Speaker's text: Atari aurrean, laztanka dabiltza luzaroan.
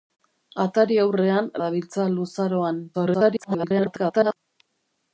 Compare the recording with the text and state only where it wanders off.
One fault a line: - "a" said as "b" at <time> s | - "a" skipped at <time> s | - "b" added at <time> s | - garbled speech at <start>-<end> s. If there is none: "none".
- "laztanka" skipped at 1.5 s
- garbled speech at 2.9-4.4 s